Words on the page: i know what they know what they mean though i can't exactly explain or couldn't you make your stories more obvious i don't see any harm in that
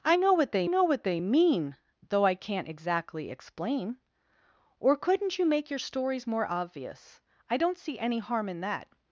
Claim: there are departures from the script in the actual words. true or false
false